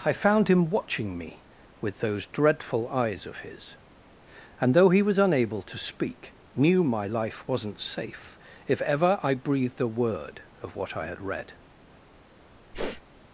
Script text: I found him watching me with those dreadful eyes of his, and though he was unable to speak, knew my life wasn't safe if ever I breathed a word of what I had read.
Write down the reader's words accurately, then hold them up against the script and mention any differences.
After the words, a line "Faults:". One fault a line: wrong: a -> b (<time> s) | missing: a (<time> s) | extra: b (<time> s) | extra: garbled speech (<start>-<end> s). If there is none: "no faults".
I found him watching me with those dreadful eyes of his, and though he was unable to speak, knew my life wasn't safe if ever I breathed a word of what I had read.
Faults:
no faults